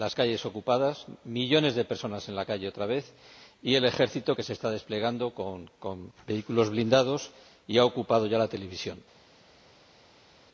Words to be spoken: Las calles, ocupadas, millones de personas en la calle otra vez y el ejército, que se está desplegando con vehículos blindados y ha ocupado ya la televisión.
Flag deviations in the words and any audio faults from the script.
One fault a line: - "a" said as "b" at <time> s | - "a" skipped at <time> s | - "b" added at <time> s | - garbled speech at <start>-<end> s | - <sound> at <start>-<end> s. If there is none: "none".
none